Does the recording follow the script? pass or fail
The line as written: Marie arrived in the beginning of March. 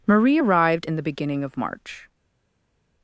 pass